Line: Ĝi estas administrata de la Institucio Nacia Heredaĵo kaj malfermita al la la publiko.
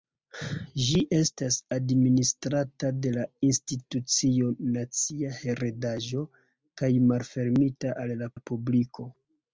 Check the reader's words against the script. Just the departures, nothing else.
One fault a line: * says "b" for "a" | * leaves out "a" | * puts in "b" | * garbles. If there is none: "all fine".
all fine